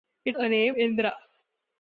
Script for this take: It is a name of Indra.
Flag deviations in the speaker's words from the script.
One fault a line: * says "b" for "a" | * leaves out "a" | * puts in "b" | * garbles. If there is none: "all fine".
* leaves out "is"
* leaves out "of"